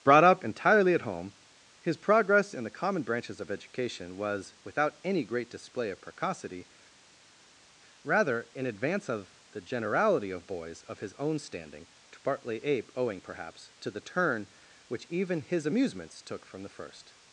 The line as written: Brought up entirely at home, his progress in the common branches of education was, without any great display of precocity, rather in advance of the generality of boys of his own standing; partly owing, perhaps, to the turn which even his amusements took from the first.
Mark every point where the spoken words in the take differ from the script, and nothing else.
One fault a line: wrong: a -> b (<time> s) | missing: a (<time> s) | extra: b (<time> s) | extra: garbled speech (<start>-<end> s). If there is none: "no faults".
extra: to (12.1 s)
extra: ape (12.6 s)